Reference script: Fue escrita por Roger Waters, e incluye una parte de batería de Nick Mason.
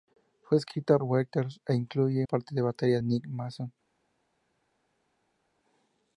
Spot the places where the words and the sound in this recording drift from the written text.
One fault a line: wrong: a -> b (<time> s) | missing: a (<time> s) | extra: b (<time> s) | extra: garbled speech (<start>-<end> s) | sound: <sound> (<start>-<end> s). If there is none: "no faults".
missing: por Roger (1.0 s)
missing: una (2.3 s)
missing: de (3.0 s)